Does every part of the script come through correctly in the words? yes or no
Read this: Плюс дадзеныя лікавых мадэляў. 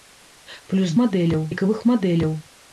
no